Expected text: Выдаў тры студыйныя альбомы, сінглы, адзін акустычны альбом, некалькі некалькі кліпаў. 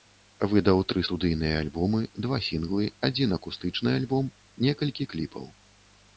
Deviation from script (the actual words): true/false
true